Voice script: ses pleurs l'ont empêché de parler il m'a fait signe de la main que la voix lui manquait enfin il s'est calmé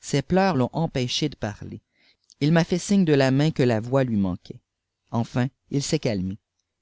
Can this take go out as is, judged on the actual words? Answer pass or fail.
pass